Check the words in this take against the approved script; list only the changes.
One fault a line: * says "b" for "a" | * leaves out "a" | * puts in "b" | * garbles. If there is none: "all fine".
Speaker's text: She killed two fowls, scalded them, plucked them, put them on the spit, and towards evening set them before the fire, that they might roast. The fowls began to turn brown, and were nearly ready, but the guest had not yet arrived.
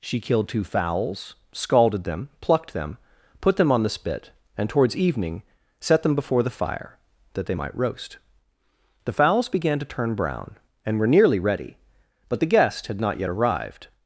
all fine